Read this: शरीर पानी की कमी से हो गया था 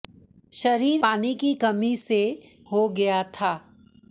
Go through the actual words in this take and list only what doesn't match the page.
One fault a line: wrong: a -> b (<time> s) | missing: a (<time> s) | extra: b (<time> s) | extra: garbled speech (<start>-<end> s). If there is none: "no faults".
no faults